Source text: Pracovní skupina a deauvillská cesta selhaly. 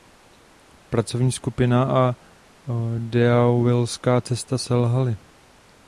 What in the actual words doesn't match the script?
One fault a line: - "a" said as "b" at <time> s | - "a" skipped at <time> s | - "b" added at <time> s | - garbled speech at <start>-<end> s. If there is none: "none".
none